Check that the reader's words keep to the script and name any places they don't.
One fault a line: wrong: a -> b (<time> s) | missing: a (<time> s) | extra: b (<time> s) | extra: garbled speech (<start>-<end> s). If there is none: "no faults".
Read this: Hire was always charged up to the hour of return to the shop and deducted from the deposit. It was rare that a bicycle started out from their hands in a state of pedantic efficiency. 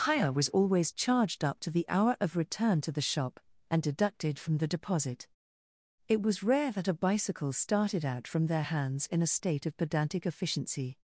no faults